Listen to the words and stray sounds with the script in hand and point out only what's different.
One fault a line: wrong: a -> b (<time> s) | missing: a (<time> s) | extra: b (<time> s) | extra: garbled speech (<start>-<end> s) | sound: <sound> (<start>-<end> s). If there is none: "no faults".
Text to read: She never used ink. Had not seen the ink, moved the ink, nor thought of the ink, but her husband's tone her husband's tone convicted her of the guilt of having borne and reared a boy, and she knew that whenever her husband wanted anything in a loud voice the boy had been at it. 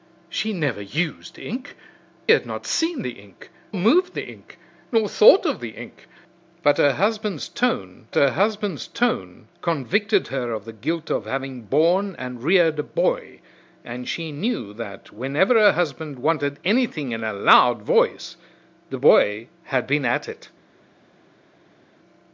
no faults